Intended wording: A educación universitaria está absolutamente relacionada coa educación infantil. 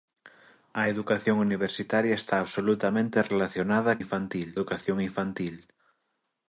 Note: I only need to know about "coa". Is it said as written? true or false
false